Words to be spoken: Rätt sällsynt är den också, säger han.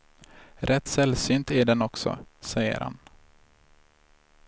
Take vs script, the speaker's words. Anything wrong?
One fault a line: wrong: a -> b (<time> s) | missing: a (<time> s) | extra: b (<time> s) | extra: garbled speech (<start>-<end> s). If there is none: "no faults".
no faults